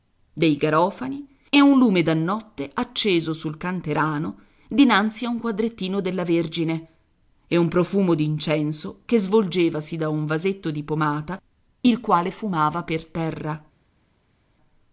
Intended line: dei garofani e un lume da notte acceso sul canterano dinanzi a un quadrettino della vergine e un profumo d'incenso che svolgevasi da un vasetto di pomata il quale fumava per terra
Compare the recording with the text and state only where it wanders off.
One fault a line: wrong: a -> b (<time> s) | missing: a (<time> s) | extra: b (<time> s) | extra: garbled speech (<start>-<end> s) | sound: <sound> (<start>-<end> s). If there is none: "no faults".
no faults